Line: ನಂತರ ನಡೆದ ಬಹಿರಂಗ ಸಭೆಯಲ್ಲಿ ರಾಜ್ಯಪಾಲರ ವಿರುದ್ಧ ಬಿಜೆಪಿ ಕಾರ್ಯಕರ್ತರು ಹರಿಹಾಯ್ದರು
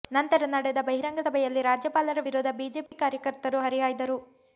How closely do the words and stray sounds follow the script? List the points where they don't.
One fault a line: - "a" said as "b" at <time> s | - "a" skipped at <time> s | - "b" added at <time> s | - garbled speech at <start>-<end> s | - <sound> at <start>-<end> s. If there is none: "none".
- dropout at 2.9-2.9 s